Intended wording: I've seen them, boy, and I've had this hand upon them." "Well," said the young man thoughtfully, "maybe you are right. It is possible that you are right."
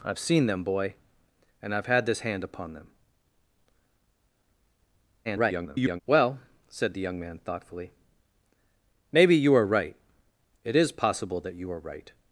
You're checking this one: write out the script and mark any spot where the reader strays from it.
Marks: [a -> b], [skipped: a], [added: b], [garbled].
I've seen them, boy, and I've had this hand upon them." [garbled] "Well," said the young man thoughtfully, "maybe you are right. It is possible that you are right."